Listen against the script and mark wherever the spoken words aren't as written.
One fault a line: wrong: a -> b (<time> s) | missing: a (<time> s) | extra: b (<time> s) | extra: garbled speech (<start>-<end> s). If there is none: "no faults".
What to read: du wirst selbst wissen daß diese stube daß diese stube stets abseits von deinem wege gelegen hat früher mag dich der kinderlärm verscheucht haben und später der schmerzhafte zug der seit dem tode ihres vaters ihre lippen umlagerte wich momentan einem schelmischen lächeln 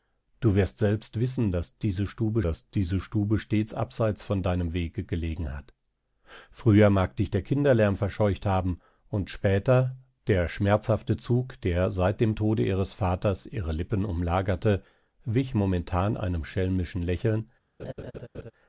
no faults